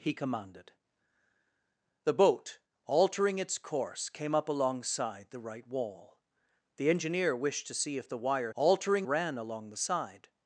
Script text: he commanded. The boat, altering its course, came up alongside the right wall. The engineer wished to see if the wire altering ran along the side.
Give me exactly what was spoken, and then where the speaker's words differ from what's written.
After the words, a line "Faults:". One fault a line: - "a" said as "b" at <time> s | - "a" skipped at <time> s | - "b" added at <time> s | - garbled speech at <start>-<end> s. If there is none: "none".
he commanded. The boat, altering its course, came up alongside the right wall. The engineer wished to see if the wire altering ran along the side.
Faults:
none